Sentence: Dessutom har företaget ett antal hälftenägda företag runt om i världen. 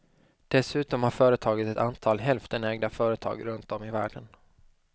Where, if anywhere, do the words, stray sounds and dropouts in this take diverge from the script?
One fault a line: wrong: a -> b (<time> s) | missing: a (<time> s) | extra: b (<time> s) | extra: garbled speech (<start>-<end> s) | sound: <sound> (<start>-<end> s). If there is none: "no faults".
no faults